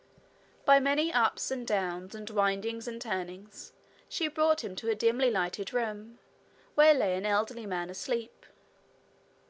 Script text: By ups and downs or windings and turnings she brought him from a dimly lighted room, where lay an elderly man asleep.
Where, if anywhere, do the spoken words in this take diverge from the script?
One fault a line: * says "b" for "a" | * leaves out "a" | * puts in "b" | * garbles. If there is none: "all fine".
* puts in "many"
* says "and" for "or"
* says "to" for "from"